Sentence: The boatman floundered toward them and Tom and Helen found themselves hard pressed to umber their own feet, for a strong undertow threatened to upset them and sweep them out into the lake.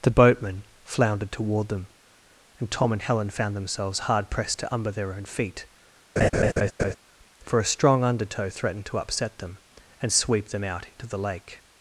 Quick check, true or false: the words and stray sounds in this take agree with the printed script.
false